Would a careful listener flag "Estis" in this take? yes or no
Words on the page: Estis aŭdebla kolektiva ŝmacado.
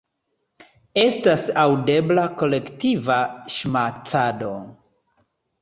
yes